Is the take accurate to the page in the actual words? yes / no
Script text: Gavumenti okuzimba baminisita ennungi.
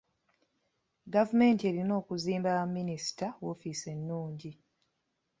no